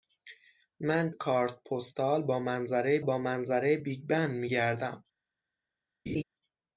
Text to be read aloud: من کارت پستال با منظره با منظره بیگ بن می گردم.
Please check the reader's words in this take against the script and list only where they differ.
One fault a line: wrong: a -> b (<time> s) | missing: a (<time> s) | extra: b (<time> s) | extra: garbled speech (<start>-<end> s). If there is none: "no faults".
no faults